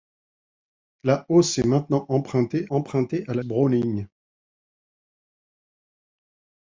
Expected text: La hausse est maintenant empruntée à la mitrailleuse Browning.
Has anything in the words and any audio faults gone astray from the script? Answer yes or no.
yes